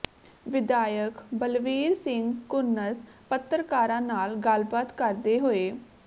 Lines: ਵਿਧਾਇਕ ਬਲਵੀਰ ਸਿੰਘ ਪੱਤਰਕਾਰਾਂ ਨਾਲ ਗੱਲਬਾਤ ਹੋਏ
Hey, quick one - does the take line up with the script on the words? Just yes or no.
no